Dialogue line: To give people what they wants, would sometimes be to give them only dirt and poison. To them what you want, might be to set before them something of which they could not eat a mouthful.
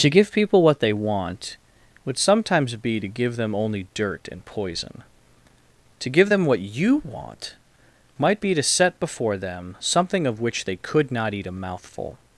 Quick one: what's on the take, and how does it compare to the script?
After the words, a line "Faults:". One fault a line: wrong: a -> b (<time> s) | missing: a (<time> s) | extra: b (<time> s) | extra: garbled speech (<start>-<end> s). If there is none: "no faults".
To give people what they want, would sometimes be to give them only dirt and poison. To give them what you want, might be to set before them something of which they could not eat a mouthful.
Faults:
wrong: wants -> want (0.9 s)
extra: give (6.1 s)